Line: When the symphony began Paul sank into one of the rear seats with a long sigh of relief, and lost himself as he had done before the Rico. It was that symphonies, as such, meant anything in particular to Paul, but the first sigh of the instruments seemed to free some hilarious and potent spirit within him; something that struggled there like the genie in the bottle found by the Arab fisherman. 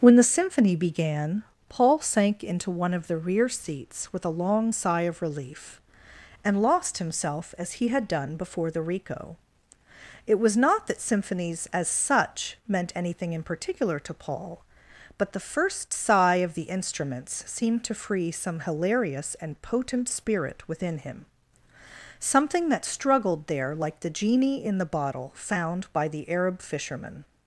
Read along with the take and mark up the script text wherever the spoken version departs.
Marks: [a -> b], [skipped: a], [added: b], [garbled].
When the symphony began Paul sank into one of the rear seats with a long sigh of relief, and lost himself as he had done before the Rico. It was [added: not] that symphonies, as such, meant anything in particular to Paul, but the first sigh of the instruments seemed to free some hilarious and potent spirit within him; something that struggled there like the genie in the bottle found by the Arab fisherman.